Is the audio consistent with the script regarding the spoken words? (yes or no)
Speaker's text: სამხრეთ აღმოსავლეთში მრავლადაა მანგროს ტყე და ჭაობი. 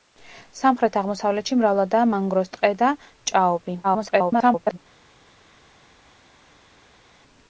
no